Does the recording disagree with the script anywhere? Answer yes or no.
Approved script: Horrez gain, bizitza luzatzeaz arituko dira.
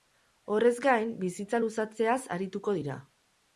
no